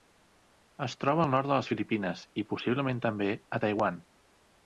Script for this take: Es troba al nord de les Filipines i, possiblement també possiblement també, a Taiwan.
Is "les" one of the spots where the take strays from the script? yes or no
no